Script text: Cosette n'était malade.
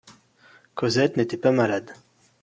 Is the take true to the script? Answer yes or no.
no